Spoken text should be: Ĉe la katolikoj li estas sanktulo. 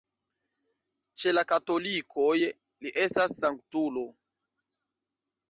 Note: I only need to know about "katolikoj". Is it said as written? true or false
true